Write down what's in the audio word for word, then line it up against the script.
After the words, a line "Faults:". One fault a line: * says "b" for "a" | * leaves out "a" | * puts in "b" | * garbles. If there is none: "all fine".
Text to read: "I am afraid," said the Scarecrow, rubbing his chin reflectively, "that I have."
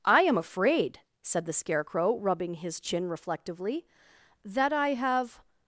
"I am afraid," said the Scarecrow, rubbing his chin reflectively, "that I have."
Faults:
all fine